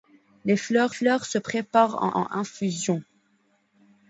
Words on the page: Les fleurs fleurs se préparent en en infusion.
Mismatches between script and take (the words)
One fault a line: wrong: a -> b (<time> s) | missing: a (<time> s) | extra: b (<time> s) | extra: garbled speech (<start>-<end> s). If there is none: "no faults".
no faults